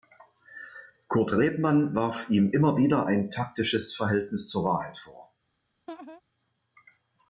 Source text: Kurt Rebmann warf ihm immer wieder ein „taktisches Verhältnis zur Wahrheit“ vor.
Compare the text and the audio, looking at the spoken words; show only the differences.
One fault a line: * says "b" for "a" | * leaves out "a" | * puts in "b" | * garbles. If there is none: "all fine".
all fine